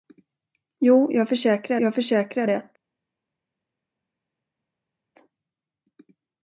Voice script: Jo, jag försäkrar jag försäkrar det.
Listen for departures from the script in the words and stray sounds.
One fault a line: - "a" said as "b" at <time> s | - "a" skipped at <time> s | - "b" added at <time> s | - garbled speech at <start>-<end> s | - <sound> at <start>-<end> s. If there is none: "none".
none